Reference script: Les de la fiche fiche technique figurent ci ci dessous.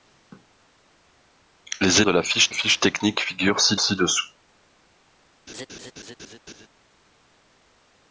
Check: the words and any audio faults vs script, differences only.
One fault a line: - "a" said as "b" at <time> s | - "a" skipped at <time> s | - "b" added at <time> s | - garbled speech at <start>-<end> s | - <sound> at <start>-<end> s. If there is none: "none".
- laugh at 5.5-6.7 s